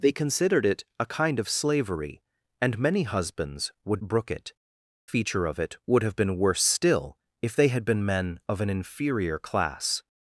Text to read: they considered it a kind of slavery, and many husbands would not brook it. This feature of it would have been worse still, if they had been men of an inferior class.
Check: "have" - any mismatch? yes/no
no